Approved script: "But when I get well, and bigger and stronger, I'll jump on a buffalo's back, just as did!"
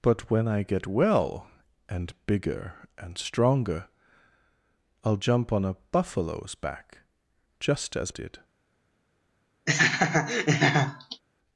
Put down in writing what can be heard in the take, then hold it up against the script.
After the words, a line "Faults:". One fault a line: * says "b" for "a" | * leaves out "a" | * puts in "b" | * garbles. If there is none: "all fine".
"But when I get well, and bigger and stronger, I'll jump on a buffalo's back, just as did!"
Faults:
all fine